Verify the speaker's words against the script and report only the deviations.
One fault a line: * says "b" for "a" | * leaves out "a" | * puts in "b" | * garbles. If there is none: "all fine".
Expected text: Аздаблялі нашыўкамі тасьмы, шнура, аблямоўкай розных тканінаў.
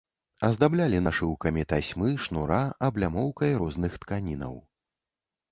all fine